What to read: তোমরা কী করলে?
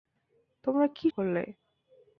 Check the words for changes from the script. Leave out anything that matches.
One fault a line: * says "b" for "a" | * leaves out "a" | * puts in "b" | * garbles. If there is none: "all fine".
all fine